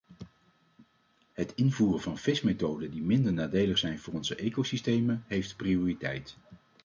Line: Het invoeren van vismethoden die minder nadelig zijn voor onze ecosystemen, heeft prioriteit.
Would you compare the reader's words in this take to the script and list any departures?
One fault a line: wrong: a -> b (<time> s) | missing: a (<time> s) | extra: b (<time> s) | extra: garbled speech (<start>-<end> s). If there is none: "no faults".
no faults